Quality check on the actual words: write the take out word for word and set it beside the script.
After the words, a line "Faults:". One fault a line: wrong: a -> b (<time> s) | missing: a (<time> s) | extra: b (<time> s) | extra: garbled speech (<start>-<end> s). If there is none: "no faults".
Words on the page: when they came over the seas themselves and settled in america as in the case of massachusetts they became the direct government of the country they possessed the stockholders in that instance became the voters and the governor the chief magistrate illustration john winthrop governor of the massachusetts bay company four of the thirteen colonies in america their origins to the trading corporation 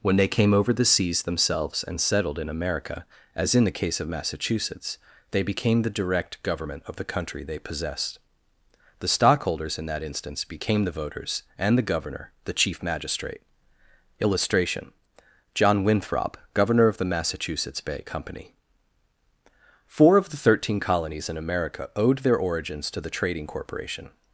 when they came over the seas themselves and settled in america as in the case of massachusetts they became the direct government of the country they possessed the stockholders in that instance became the voters and the governor the chief magistrate illustration john winthrop governor of the massachusetts bay company four of the thirteen colonies in america owed their origins to the trading corporation
Faults:
extra: owed (22.0 s)